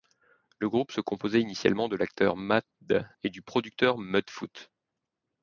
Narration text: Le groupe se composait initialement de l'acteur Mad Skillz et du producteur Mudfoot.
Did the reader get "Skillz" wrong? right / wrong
wrong